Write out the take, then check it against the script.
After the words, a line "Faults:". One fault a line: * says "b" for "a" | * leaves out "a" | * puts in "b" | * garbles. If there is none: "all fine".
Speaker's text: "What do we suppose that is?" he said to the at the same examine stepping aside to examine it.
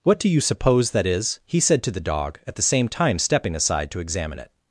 "What do you suppose that is?" he said to the dog, at the same time stepping aside to examine it.
Faults:
* says "you" for "we"
* puts in "dog"
* says "time" for "examine"